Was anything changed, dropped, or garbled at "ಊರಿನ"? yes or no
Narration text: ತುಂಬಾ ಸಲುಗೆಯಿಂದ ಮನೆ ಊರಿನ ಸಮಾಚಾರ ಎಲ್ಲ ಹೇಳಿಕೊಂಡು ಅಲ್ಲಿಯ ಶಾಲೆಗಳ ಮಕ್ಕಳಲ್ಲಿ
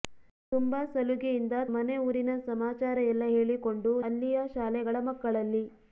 no